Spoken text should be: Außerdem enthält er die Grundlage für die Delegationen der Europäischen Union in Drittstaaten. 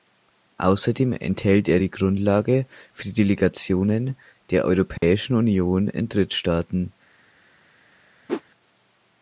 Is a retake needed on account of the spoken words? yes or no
no